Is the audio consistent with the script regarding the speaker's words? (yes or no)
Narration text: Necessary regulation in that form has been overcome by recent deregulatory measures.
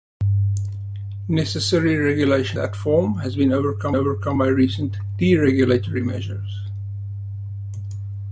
no